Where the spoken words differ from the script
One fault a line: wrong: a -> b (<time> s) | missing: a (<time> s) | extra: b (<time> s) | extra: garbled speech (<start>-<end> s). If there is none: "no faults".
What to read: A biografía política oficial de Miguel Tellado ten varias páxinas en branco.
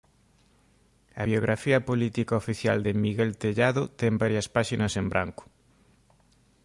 no faults